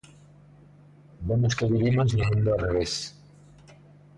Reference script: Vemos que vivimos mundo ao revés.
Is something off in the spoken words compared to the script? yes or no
yes